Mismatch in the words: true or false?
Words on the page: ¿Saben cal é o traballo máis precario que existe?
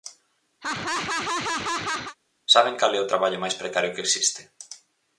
false